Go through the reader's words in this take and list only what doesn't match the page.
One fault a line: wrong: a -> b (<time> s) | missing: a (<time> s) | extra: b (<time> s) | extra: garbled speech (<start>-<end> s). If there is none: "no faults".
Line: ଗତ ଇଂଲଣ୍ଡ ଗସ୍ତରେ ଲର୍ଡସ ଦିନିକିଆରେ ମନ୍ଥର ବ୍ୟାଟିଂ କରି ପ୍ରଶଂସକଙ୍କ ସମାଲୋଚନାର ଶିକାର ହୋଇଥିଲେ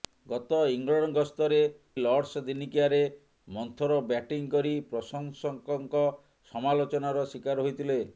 no faults